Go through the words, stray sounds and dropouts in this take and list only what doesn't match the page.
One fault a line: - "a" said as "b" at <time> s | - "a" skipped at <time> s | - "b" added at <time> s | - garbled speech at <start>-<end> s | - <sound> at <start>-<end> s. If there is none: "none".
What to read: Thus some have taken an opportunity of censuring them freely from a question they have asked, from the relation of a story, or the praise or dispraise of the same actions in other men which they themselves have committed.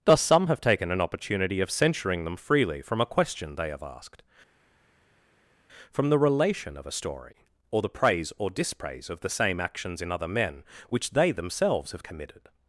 none